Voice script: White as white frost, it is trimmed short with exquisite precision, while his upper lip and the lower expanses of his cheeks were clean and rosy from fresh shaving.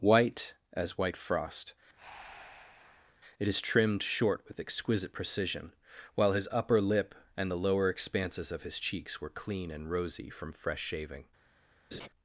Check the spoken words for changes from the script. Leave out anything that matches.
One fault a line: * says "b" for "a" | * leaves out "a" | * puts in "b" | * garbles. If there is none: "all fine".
all fine